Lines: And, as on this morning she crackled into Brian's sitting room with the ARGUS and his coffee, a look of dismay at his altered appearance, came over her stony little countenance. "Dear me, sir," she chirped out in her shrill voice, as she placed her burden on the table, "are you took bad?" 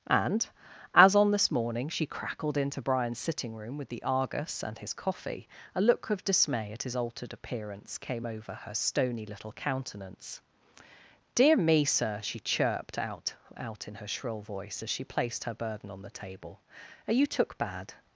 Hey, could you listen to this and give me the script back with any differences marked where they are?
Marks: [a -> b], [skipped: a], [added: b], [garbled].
And, as on this morning she crackled into Brian's sitting room with the ARGUS and his coffee, a look of dismay at his altered appearance, came over her stony little countenance. "Dear me, sir," she chirped out [added: out] in her shrill voice, as she placed her burden on the table, "are you took bad?"